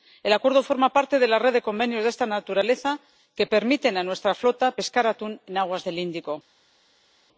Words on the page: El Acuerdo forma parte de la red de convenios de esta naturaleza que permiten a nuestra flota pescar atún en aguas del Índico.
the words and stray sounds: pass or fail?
pass